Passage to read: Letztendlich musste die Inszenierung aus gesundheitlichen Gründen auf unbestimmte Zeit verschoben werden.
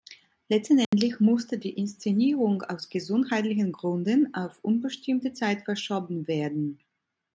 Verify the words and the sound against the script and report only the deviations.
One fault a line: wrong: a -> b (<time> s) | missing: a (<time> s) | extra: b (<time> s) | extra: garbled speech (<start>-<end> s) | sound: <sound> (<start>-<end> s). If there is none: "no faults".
sound: dropout (0.8-0.9 s)